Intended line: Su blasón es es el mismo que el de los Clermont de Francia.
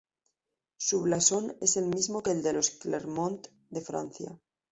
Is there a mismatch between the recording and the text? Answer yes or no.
yes